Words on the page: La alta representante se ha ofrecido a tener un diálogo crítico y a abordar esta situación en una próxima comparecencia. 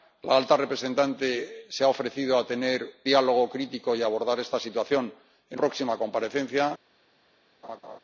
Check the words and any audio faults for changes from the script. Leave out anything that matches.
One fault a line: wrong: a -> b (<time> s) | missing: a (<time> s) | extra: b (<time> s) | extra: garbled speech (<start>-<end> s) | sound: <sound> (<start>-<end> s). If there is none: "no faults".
missing: un (2.9 s)
missing: una (5.6 s)
sound: laugh (7.6-8.0 s)